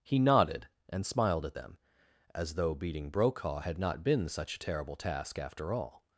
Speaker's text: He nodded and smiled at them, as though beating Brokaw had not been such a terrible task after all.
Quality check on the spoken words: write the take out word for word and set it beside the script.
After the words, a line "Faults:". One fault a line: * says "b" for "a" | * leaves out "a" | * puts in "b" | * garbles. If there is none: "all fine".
He nodded and smiled at them, as though beating Brokaw had not been such a terrible task after all.
Faults:
all fine